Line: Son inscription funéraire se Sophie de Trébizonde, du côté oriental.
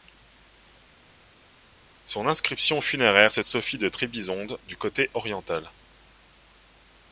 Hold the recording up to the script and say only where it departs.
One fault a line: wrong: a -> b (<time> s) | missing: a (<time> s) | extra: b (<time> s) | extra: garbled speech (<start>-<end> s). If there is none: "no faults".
no faults